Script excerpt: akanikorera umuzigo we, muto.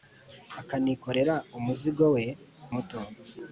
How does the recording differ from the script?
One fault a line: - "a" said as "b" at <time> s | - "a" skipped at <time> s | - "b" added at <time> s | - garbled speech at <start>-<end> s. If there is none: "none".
none